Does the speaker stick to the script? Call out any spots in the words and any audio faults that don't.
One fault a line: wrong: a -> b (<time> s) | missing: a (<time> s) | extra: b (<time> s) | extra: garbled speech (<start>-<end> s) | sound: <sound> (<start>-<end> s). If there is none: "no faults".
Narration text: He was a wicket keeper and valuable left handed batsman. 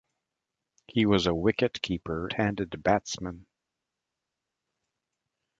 missing: and valuable left (2.3 s)